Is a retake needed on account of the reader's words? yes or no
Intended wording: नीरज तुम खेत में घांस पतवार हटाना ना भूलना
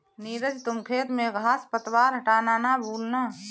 no